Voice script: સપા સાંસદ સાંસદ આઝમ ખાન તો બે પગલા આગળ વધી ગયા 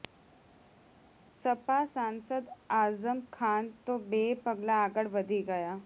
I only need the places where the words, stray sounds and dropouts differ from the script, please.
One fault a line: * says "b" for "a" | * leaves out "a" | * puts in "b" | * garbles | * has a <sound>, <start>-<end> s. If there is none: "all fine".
* leaves out "સાંસદ"